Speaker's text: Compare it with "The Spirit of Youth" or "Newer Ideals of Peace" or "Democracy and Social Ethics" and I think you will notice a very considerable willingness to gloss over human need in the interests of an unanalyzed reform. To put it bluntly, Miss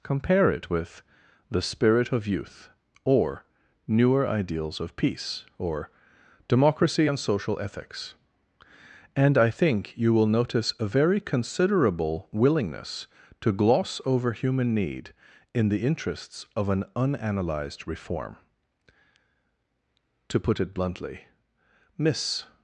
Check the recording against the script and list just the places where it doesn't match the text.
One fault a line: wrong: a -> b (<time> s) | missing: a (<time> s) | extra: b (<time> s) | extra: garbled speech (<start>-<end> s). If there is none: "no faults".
no faults